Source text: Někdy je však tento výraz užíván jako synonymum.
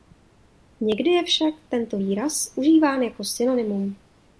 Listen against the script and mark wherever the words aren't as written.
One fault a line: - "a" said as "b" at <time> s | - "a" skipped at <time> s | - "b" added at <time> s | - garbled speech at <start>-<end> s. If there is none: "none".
none